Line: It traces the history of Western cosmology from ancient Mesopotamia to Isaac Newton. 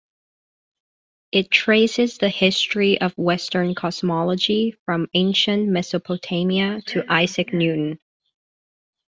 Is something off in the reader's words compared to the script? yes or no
no